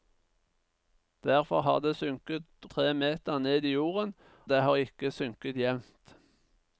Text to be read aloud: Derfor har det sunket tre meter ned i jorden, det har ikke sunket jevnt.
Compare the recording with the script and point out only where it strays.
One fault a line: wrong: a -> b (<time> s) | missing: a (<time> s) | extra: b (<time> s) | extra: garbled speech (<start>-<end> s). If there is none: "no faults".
no faults